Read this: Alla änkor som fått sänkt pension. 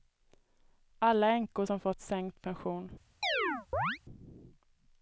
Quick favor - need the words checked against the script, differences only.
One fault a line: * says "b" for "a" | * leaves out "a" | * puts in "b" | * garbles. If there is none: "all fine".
all fine